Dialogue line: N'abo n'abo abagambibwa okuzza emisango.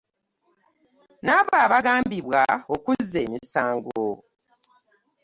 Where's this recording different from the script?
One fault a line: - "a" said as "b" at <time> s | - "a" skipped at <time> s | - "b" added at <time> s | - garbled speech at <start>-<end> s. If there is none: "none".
- "n'abo" skipped at 1.5 s